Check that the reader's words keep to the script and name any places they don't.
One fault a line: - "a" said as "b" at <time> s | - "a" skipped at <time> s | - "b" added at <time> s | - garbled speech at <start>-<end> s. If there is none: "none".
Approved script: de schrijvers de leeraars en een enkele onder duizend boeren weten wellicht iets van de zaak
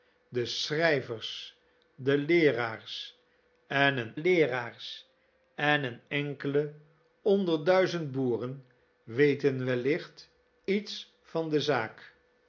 - "leeraars en een" added at 4.1 s